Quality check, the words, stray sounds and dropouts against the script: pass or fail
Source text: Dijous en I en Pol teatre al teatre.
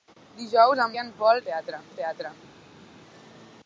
pass